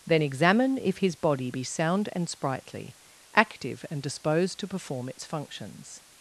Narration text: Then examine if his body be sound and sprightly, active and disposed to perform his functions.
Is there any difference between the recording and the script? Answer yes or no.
yes